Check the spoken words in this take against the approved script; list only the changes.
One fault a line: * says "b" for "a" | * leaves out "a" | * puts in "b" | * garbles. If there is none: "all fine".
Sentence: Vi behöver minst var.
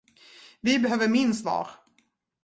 all fine